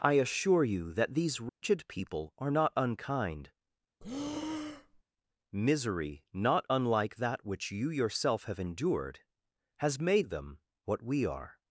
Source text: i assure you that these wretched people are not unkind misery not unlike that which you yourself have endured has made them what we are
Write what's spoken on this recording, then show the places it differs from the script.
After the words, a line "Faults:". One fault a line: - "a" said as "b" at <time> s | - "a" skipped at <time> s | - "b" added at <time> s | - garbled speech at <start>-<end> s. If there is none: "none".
i assure you that these wretched people are not unkind misery not unlike that which you yourself have endured has made them what we are
Faults:
none